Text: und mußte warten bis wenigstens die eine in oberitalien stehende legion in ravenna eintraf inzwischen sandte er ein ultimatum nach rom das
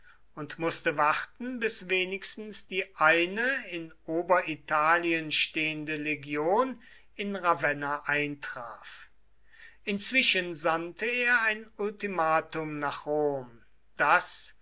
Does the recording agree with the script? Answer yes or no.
yes